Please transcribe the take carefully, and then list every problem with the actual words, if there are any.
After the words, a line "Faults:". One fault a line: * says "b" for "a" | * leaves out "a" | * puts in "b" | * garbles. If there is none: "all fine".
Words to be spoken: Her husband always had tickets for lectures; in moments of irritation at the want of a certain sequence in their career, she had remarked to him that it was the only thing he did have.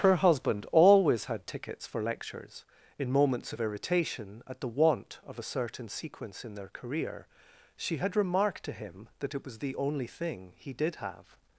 Her husband always had tickets for lectures; in moments of irritation at the want of a certain sequence in their career, she had remarked to him that it was the only thing he did have.
Faults:
all fine